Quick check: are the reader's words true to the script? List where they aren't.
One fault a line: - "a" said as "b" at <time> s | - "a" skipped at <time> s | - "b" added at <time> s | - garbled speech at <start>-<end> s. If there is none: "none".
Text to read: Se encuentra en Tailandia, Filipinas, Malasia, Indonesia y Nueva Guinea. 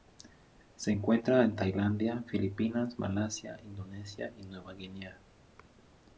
none